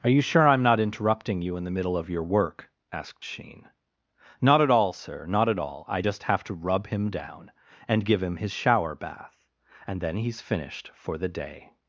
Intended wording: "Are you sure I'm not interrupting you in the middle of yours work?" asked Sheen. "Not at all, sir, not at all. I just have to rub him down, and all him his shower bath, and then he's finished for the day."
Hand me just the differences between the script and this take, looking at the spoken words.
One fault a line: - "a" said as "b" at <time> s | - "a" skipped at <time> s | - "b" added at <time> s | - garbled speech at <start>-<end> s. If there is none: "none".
- "yours" said as "your" at 2.1 s
- "all" said as "give" at 8.0 s